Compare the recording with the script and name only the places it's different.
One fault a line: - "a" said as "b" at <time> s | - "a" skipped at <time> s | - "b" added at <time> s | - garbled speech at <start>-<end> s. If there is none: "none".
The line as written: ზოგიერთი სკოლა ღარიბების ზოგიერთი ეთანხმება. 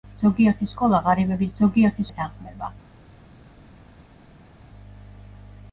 none